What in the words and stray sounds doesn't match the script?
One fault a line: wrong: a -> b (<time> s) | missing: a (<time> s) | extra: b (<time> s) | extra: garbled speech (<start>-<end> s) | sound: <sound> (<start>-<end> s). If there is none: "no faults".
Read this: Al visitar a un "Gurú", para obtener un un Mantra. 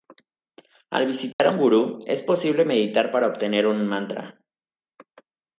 sound: dropout (1.3-1.4 s)
extra: es posible meditar (2.1 s)
missing: un (3.9 s)